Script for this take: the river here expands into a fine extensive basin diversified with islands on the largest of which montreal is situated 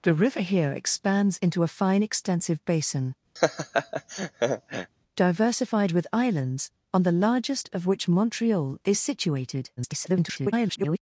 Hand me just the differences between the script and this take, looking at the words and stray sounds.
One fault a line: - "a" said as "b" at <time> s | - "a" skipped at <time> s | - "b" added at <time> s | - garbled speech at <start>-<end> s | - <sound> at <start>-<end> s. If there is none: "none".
- laugh at 3.4-4.9 s
- garbled speech at 9.8-11.0 s